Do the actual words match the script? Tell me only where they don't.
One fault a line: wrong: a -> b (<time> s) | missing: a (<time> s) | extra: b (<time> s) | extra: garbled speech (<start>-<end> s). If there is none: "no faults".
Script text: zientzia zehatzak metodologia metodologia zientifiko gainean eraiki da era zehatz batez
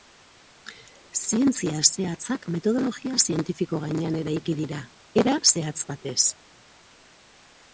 missing: metodologia (3.2 s)
wrong: da -> dira (4.6 s)